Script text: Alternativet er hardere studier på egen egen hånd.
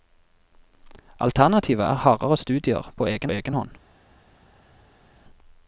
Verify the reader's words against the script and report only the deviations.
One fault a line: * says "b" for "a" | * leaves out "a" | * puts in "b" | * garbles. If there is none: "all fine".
all fine